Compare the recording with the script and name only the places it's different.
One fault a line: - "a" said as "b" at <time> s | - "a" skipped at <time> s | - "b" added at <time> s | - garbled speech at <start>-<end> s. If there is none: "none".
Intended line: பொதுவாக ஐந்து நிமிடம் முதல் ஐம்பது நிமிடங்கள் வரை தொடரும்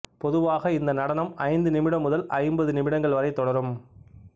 - "இந்த நடனம்" added at 0.7 s